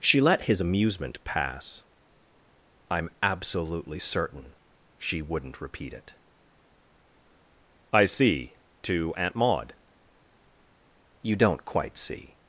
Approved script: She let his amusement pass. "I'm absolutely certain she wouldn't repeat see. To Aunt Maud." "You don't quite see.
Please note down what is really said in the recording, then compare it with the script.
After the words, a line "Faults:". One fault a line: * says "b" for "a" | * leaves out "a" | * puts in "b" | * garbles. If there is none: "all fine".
She let his amusement pass. "I'm absolutely certain she wouldn't repeat it." "I see. To Aunt Maud." "You don't quite see.
Faults:
* puts in "it I"